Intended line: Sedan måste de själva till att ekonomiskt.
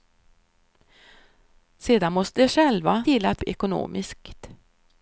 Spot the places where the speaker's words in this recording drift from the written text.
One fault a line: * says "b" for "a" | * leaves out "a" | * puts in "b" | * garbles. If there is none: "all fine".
all fine